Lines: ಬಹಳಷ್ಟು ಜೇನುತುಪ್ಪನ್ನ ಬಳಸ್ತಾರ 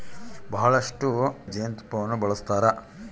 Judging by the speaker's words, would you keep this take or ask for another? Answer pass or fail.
pass